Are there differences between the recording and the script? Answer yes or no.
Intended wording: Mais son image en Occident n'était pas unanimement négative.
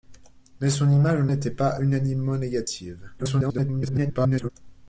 yes